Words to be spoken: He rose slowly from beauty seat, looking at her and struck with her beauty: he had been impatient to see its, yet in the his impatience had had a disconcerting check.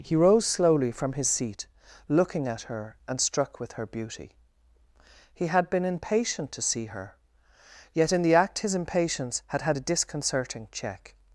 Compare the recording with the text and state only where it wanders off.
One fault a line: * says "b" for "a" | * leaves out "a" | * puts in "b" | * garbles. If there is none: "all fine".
* says "his" for "beauty"
* says "her" for "its"
* puts in "act"